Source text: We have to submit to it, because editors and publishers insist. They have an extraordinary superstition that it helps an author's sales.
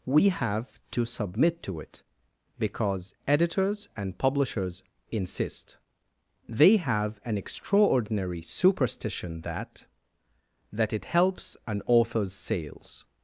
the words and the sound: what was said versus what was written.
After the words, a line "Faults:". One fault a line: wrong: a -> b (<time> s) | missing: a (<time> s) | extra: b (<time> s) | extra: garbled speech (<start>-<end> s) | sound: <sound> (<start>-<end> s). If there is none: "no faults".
We have to submit to it, because editors and publishers insist. They have an extraordinary superstition that that it helps an author's sales.
Faults:
extra: that (10.7 s)